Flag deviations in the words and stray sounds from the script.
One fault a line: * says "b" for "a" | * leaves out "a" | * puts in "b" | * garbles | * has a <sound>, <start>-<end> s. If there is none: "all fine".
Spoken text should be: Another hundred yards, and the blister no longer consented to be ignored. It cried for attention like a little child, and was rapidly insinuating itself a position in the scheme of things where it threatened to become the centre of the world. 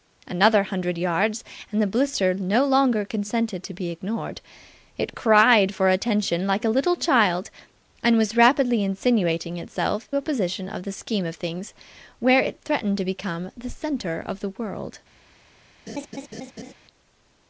* has a laugh, 15.9-16.7 s